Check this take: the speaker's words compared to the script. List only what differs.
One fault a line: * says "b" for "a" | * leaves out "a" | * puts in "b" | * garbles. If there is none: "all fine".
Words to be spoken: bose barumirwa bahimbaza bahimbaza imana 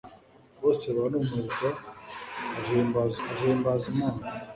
all fine